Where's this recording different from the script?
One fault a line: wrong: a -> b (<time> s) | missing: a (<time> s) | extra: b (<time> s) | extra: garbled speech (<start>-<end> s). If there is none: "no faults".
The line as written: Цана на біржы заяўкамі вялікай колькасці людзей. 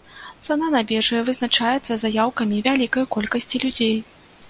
extra: вызначаецца (1.3 s)